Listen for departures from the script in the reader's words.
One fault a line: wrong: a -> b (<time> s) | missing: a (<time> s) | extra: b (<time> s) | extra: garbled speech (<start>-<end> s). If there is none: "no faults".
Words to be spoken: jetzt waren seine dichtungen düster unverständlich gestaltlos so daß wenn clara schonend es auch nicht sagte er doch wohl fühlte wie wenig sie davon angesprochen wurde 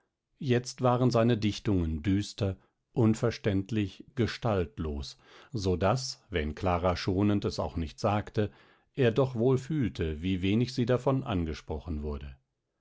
no faults